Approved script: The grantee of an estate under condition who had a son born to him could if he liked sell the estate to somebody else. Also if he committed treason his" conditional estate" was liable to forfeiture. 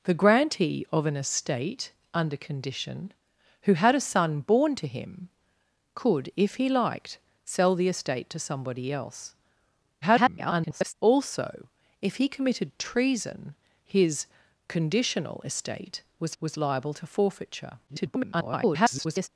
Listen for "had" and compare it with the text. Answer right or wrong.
right